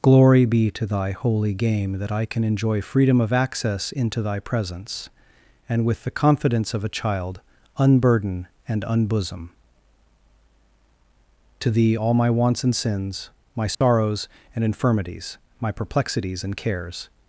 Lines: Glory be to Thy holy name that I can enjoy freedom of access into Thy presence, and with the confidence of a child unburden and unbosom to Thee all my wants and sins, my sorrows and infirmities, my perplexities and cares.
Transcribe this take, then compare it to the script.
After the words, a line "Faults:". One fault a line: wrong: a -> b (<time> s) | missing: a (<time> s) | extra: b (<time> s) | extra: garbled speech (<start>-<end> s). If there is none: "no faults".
Glory be to Thy holy game that I can enjoy freedom of access into Thy presence, and with the confidence of a child unburden and unbosom to Thee all my wants and sins, my sorrows and infirmities, my perplexities and cares.
Faults:
wrong: name -> game (1.5 s)